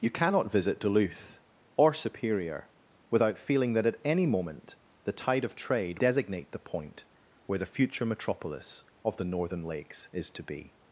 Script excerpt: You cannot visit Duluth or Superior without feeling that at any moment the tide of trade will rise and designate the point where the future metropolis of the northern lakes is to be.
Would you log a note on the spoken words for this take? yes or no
yes